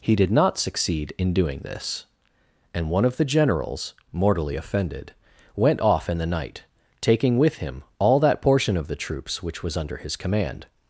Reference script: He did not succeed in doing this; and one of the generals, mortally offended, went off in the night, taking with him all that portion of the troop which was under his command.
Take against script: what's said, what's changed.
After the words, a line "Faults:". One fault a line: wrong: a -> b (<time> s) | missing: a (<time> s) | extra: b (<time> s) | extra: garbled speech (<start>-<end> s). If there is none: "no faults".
He did not succeed in doing this; and one of the generals, mortally offended, went off in the night, taking with him all that portion of the troops which was under his command.
Faults:
wrong: troop -> troops (9.0 s)